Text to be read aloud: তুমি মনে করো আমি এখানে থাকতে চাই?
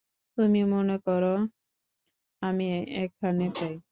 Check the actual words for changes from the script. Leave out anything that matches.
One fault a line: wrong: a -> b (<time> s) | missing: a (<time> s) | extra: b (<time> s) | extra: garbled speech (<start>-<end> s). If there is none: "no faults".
missing: থাকতে (3.4 s)